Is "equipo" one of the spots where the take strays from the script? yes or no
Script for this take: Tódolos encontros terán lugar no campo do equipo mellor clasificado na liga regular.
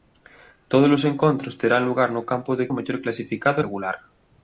yes